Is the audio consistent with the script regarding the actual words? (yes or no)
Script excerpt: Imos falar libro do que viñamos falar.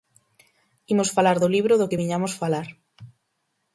no